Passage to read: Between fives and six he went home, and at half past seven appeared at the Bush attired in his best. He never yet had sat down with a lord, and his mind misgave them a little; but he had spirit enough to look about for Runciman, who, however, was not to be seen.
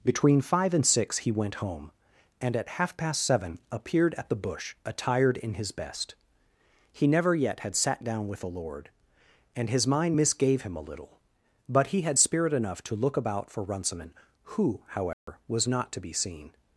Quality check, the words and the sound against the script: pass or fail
fail